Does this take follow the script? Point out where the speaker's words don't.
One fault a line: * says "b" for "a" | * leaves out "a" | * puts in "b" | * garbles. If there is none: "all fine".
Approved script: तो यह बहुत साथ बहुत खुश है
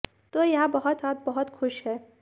all fine